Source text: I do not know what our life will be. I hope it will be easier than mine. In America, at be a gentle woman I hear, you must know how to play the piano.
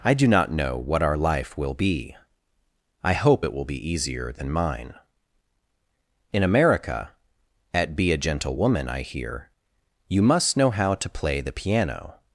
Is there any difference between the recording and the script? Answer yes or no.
no